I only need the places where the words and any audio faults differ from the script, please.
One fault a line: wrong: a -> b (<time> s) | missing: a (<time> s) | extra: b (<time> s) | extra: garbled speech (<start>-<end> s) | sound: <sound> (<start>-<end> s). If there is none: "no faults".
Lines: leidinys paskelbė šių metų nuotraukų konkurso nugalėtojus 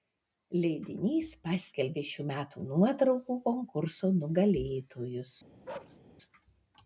sound: bark (5.6-6.0 s)